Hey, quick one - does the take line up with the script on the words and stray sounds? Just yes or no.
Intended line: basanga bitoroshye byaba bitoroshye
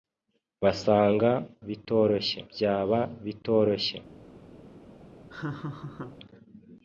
no